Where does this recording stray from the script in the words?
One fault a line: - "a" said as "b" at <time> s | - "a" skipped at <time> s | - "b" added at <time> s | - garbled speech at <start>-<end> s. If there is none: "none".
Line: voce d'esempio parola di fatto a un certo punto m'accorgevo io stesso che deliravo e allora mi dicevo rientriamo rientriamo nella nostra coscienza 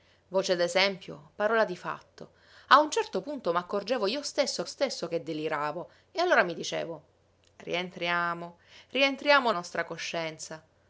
- "stesso" added at 4.6 s
- "nella" skipped at 9.5 s